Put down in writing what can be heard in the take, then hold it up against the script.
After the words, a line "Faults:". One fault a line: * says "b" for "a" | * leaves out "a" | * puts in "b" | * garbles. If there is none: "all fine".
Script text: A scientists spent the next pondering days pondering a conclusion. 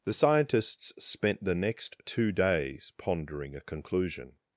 The scientists spent the next two days pondering a conclusion.
Faults:
* says "The" for "A"
* says "two" for "pondering"